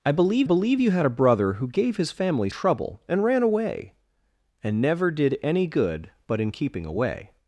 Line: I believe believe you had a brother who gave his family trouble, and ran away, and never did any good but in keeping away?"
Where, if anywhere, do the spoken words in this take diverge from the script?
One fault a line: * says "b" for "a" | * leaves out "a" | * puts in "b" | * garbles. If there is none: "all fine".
all fine